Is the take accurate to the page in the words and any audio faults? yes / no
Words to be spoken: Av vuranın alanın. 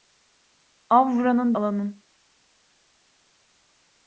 yes